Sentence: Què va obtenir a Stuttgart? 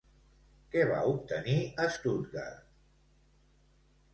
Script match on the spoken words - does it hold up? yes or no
yes